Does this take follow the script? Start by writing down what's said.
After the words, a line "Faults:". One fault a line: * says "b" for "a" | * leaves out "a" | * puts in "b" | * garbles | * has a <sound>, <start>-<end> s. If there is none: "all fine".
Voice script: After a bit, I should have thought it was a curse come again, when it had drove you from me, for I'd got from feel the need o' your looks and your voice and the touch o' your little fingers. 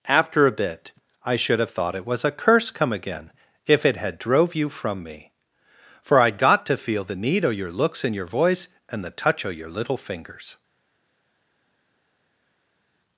After a bit, I should have thought it was a curse come again, if it had drove you from me, for I'd got to feel the need o' your looks and your voice and the touch o' your little fingers.
Faults:
* says "if" for "when"
* says "to" for "from"